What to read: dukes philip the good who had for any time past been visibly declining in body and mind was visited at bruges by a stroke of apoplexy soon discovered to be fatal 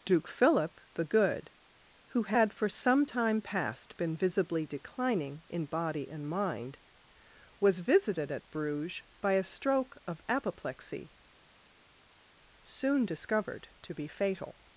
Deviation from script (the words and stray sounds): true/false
true